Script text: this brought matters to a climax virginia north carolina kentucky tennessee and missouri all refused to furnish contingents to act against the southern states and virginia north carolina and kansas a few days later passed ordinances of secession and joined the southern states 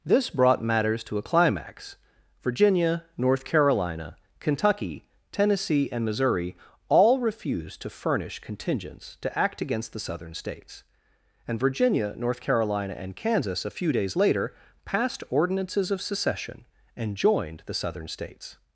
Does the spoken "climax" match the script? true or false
true